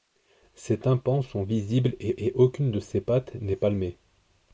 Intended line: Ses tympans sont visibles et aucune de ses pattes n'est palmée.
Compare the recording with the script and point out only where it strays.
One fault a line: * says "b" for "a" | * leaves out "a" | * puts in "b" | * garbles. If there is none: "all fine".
* puts in "et"